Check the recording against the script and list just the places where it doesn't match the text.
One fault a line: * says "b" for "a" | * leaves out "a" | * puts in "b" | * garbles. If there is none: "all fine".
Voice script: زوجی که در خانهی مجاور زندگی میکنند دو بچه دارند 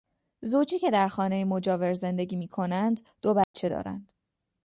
all fine